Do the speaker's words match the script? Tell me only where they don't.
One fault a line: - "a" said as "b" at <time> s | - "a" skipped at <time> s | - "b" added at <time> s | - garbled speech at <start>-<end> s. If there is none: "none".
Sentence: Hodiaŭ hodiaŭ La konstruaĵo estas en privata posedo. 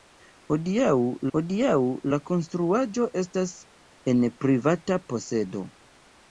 none